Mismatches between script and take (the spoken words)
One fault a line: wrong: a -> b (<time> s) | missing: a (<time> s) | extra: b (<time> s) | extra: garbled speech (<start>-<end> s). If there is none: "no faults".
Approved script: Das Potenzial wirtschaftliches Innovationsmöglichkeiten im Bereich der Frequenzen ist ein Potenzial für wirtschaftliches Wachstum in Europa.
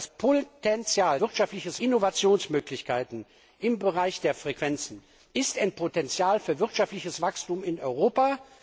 no faults